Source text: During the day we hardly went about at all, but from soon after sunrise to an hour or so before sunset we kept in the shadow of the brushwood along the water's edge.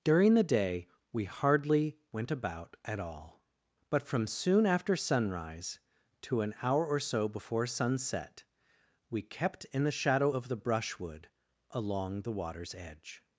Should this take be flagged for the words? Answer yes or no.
no